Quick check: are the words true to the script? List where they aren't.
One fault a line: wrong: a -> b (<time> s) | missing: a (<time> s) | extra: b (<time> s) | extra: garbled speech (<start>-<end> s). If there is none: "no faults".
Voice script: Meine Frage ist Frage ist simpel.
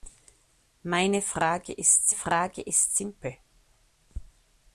no faults